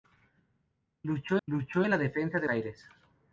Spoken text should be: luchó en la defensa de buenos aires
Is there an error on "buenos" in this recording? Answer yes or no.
yes